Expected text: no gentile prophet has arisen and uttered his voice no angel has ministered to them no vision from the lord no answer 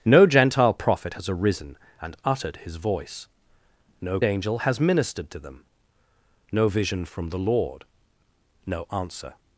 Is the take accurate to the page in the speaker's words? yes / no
yes